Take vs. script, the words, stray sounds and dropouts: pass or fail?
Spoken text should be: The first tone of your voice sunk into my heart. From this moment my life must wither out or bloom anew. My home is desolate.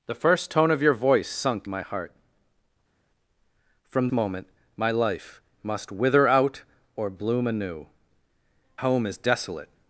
fail